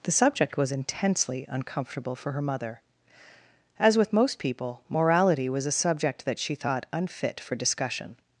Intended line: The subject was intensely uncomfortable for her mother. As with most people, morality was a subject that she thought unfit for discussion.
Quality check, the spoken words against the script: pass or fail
pass